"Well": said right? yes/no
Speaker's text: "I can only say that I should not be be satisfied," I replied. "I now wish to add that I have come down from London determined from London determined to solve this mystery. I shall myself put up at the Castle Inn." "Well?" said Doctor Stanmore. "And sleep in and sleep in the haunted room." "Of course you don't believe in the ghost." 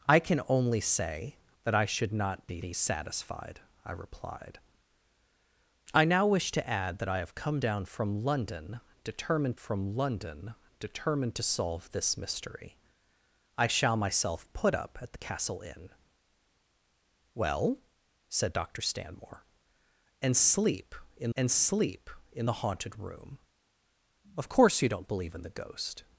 yes